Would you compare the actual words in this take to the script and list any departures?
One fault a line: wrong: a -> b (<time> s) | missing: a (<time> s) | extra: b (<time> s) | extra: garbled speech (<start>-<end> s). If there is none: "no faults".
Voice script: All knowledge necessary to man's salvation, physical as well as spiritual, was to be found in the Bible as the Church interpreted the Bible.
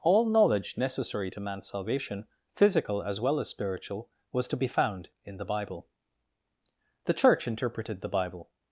missing: as (5.9 s)